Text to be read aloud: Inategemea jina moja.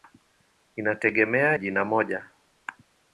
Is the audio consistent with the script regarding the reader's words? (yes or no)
yes